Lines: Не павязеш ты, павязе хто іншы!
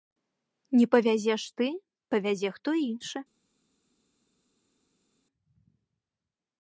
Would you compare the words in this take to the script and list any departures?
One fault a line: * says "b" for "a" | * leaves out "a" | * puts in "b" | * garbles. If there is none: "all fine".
all fine